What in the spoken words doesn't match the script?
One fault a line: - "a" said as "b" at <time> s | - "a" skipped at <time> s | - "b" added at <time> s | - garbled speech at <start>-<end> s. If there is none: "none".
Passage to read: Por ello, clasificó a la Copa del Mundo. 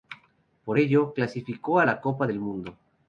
none